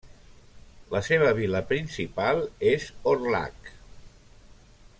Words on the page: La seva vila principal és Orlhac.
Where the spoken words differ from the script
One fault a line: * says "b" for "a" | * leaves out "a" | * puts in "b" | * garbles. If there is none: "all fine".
all fine